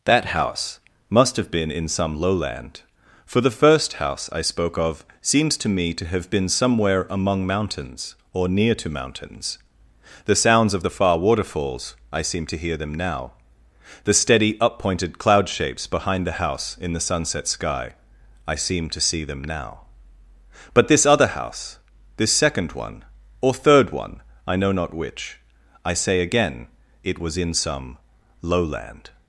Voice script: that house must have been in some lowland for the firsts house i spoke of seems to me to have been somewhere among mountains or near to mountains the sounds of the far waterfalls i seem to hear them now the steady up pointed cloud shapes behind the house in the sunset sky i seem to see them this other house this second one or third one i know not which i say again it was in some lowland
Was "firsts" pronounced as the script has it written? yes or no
no